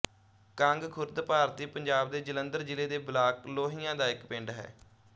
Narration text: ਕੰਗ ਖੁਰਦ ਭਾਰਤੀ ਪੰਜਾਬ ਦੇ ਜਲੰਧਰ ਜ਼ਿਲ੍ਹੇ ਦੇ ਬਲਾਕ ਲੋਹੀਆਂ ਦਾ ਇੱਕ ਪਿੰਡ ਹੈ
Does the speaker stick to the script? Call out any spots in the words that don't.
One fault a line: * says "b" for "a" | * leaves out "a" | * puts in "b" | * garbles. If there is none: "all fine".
all fine